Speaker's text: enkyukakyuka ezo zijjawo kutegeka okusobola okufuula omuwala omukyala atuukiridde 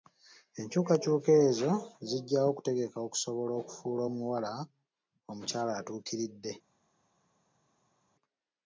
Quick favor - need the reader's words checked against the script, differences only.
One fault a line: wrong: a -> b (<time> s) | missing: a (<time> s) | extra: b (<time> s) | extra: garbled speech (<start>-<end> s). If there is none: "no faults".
no faults